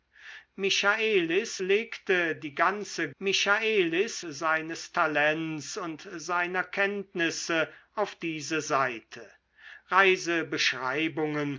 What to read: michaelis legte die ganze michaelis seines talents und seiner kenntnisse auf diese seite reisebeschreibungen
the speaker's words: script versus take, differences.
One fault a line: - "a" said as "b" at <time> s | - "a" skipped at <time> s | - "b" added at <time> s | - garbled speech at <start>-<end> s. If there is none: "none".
none